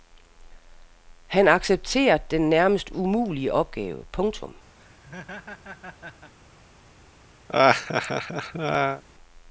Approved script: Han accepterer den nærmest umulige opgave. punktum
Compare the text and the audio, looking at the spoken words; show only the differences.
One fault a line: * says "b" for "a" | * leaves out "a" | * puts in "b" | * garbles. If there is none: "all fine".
all fine